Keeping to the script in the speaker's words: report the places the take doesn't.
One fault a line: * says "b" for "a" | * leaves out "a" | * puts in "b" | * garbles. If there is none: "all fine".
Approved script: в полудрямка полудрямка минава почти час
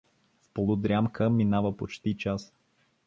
* leaves out "полудрямка"